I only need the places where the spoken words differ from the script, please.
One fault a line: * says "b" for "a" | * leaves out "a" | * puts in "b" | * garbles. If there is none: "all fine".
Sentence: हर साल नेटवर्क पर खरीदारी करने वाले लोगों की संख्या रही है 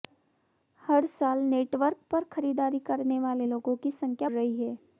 all fine